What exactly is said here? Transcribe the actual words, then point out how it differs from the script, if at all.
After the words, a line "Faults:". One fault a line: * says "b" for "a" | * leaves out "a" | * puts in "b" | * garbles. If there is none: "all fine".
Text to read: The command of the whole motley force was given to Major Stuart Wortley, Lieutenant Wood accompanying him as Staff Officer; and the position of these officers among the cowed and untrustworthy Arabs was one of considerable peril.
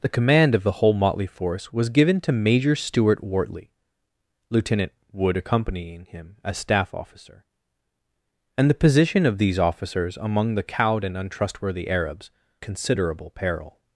The command of the whole motley force was given to Major Stuart Wortley, Lieutenant Wood accompanying him as Staff Officer; and the position of these officers among the cowed and untrustworthy Arabs considerable peril.
Faults:
* leaves out "was one of"